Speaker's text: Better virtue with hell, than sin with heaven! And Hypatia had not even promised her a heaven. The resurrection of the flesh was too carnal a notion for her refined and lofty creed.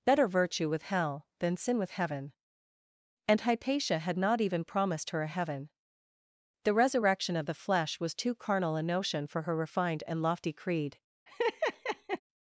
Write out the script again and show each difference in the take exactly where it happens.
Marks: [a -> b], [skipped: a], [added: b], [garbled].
Better virtue with hell, than sin with heaven! And Hypatia had not even promised her a heaven. The resurrection of the flesh was too carnal a notion for her refined and lofty creed.